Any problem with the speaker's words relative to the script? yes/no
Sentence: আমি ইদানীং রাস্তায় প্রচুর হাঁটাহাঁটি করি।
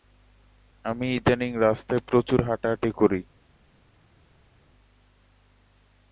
no